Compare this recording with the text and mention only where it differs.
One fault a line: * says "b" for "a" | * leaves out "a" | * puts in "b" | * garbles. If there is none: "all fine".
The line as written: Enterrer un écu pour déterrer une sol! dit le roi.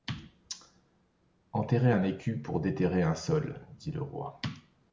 * says "un" for "une"